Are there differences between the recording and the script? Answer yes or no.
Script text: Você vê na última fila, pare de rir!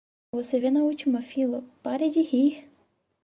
no